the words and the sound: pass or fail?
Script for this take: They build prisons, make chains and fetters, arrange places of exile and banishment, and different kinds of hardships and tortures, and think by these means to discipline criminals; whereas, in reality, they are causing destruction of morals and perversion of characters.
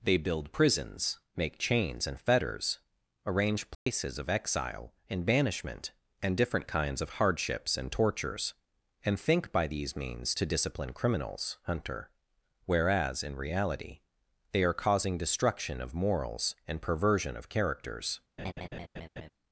fail